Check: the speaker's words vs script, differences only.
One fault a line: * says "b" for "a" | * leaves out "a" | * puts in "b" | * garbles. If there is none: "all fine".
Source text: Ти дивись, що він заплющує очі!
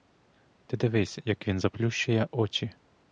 * says "як" for "що"